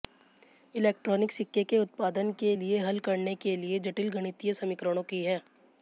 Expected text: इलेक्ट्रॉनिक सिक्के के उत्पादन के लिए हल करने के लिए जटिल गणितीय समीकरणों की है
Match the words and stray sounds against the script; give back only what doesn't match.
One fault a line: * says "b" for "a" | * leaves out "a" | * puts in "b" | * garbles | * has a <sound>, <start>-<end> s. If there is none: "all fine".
all fine